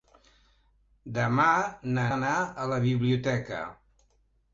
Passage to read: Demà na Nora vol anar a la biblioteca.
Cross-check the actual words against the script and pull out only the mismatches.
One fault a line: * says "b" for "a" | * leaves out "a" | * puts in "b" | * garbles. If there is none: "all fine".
* leaves out "Nora vol"